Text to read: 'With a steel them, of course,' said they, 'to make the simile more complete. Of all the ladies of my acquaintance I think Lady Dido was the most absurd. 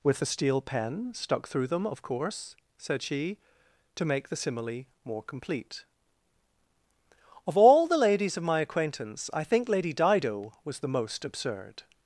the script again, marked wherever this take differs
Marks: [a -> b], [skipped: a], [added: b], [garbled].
'With a steel [added: pen stuck through] them, of course,' said [they, -> she] 'to make the simile more complete. Of all the ladies of my acquaintance I think Lady Dido was the most absurd.